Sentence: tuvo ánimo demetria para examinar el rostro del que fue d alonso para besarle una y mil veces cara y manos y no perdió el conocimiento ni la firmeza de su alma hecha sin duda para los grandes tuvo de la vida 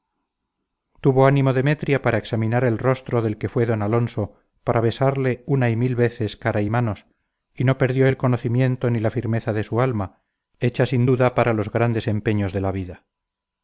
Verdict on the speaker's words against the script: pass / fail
fail